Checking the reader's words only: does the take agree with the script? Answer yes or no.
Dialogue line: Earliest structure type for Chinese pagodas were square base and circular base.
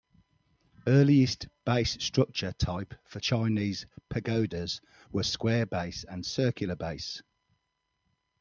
no